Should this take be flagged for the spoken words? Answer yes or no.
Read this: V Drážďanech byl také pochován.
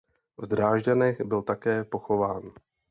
no